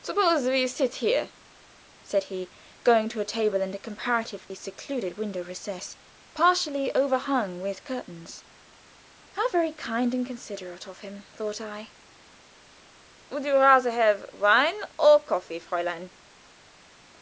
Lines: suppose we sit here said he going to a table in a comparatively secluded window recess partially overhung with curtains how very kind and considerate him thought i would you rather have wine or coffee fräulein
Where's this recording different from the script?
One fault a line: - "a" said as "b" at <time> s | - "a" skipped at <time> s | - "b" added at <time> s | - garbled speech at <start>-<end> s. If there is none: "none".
- "of" added at 10.9 s